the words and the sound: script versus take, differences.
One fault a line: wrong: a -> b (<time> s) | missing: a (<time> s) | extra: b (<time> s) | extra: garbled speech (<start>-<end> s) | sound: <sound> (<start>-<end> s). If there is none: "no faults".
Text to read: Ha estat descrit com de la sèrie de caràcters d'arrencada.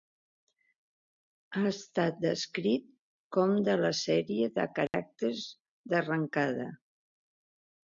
sound: dropout (4.9-4.9 s)